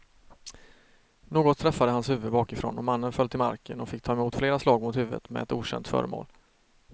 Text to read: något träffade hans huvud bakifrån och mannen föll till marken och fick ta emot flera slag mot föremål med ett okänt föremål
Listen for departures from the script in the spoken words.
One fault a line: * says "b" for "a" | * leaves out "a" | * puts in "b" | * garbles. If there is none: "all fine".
* says "huvudet" for "föremål"